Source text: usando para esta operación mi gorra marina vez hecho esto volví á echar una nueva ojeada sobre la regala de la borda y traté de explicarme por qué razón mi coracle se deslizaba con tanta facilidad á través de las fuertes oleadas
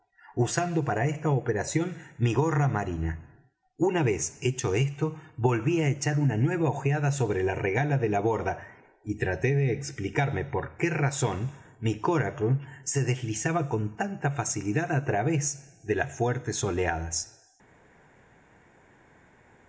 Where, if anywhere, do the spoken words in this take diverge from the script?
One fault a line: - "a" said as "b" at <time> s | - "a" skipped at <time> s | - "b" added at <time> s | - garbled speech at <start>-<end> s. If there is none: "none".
- "una" added at 3.8 s